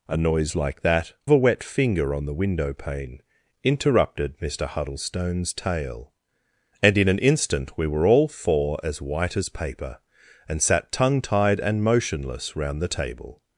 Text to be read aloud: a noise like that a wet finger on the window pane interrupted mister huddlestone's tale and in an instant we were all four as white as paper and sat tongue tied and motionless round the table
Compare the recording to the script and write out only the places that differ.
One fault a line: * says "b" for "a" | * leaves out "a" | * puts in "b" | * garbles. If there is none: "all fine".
all fine